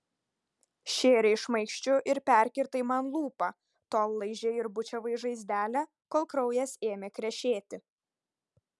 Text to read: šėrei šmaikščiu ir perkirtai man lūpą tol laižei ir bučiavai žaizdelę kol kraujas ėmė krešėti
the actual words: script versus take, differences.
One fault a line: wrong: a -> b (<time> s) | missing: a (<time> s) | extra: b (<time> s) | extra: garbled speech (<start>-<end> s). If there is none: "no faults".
no faults